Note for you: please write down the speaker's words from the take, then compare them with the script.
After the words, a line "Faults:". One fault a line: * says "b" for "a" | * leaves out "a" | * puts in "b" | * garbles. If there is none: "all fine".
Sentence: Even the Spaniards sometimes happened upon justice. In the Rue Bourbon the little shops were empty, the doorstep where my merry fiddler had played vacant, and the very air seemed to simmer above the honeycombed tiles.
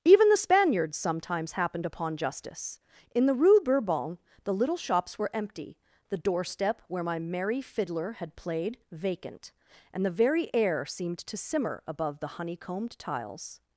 Even the Spaniards sometimes happened upon justice. In the Rue Bourbon the little shops were empty, the doorstep where my merry fiddler had played vacant, and the very air seemed to simmer above the honeycombed tiles.
Faults:
all fine